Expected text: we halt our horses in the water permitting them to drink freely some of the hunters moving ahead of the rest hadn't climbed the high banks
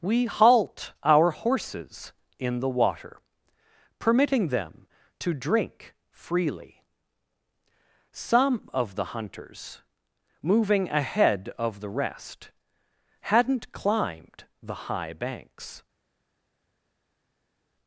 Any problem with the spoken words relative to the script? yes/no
no